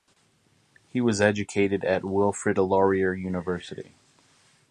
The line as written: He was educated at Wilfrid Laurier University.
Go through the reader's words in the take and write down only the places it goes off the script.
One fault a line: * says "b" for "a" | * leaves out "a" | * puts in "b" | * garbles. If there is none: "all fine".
all fine